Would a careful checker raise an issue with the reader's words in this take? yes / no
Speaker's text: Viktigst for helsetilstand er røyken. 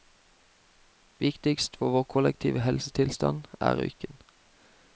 yes